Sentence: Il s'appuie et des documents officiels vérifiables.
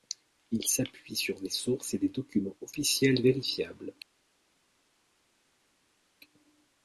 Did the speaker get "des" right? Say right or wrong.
right